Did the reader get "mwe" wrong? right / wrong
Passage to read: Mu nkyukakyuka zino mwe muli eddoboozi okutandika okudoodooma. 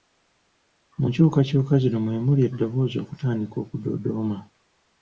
right